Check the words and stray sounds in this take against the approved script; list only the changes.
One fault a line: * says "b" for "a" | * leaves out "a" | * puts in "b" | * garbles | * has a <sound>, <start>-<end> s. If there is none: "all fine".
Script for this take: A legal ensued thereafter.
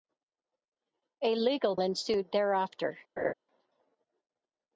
* has a laugh, 3.2-3.3 s